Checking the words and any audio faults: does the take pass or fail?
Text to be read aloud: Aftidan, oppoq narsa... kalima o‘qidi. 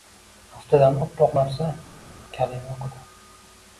pass